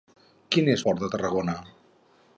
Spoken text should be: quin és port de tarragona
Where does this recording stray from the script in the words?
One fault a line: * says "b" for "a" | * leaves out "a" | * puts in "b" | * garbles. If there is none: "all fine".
all fine